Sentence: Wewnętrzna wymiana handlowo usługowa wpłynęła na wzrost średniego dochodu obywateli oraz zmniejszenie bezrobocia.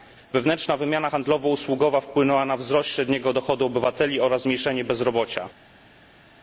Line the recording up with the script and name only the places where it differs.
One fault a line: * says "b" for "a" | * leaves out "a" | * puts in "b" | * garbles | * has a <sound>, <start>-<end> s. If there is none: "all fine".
all fine